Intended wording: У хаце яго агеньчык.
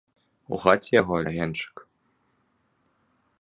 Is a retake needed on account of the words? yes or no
no